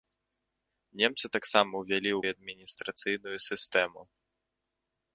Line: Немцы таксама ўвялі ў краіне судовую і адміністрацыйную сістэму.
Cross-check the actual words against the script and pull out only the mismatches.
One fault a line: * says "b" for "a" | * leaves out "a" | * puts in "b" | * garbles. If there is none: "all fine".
* leaves out "краіне судовую"